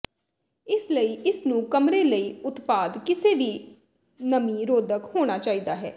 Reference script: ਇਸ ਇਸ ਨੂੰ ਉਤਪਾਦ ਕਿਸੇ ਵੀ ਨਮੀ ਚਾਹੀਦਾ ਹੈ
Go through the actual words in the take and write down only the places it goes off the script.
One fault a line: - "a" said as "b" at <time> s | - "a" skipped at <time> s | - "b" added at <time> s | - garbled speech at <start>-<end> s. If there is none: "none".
- "ਲਈ" added at 0.9 s
- "ਕਮਰੇ ਲਈ" added at 1.6 s
- "ਰੋਧਕ ਹੋਣਾ" added at 4.7 s